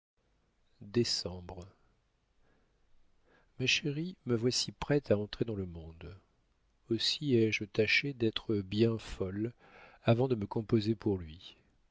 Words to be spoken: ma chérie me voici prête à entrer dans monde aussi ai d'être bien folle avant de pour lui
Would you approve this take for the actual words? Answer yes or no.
no